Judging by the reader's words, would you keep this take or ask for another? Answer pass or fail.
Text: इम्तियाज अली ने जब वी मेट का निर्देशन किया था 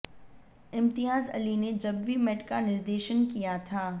pass